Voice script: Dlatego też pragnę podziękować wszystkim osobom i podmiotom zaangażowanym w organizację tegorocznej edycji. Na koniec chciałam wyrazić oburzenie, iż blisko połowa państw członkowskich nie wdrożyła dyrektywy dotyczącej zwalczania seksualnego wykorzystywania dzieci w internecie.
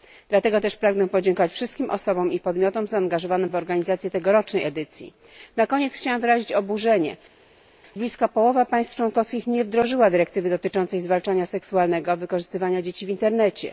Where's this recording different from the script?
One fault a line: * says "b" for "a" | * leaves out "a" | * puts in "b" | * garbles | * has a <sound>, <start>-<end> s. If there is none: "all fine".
* leaves out "iż"